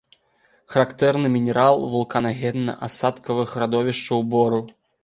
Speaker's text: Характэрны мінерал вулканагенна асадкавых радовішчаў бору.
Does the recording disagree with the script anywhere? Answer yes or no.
no